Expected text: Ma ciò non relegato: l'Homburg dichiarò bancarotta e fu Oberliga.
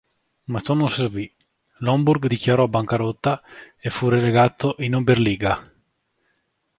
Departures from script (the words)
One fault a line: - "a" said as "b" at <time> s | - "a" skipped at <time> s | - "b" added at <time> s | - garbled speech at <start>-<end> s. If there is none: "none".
- "relegato" said as "servì" at 0.9 s
- "relegato in" added at 4.1 s